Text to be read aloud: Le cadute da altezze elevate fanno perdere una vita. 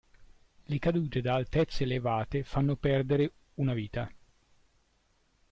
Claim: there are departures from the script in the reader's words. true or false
false